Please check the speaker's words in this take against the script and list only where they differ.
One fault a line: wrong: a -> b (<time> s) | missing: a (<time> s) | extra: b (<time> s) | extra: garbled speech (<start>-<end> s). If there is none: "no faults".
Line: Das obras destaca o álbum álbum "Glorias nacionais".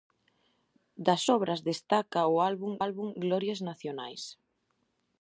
no faults